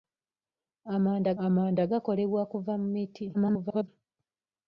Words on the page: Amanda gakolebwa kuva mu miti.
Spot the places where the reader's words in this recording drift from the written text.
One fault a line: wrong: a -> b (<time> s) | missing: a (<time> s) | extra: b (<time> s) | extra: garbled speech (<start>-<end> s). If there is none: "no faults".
extra: amanda (1.5 s)
extra: garbled speech (3.3-3.9 s)